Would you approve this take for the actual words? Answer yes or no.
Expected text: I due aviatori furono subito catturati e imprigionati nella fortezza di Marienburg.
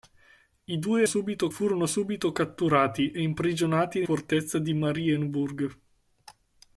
no